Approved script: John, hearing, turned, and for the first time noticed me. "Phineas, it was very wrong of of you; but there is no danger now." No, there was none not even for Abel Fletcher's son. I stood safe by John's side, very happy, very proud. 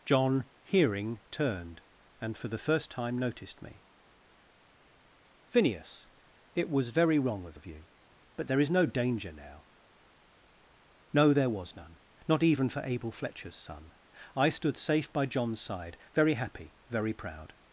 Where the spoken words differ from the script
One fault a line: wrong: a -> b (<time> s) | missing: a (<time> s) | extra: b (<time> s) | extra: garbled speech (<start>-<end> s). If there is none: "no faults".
no faults